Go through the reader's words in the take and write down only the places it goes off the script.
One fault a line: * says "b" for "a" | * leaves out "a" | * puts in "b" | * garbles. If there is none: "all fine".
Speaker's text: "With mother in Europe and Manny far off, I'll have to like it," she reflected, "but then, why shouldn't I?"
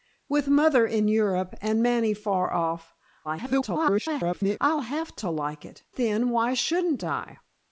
* garbles
* leaves out "she reflected but"